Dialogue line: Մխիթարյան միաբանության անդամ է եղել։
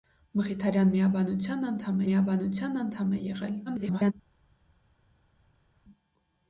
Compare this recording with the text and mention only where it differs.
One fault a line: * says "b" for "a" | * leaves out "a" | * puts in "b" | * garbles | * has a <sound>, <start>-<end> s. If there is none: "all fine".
* puts in "միաբանության անդամ"
* garbles